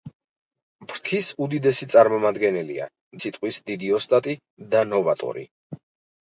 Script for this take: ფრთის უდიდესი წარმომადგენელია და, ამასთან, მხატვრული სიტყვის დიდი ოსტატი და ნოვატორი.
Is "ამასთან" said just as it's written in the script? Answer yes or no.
no